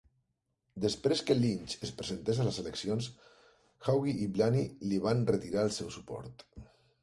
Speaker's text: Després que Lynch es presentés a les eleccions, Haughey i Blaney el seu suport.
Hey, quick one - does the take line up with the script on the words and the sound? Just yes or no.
no